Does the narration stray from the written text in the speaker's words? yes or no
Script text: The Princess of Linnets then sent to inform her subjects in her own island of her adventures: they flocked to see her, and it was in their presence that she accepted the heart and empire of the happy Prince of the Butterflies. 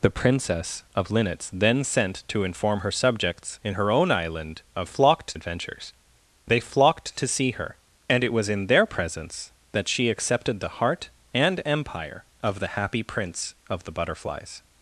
yes